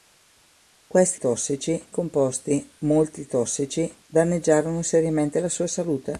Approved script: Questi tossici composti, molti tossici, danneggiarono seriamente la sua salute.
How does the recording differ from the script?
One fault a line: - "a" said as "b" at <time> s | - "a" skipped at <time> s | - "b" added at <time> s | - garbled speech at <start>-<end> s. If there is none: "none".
none